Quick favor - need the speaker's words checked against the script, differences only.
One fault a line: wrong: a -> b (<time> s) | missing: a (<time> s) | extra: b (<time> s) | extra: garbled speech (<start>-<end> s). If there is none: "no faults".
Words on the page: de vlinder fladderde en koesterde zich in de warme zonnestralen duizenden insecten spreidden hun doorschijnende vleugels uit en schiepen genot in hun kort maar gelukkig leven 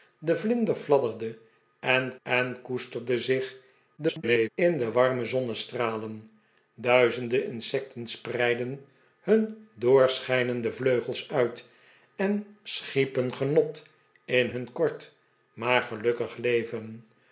extra: en (2.2 s)
extra: garbled speech (4.0-4.5 s)